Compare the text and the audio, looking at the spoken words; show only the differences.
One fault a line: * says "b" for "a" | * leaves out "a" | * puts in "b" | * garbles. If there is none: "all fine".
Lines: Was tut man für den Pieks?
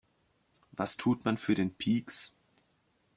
all fine